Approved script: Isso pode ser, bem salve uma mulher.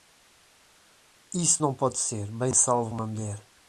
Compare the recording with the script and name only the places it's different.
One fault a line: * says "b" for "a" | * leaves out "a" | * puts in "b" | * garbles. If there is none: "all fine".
* puts in "não"